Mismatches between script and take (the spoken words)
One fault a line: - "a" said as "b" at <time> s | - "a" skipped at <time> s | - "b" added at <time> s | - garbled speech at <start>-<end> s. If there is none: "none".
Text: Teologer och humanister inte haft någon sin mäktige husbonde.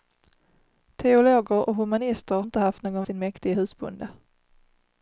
none